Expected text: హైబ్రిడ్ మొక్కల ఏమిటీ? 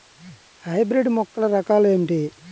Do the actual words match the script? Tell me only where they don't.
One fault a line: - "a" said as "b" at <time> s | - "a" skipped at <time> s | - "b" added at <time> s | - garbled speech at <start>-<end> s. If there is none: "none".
- "రకాలు" added at 1.6 s